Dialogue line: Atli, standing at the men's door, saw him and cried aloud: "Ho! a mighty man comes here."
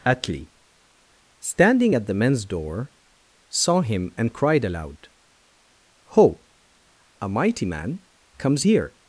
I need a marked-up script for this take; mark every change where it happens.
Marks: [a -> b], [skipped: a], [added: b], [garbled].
Atli, standing at the men's door, saw him and cried aloud: "Ho! a mighty man comes here."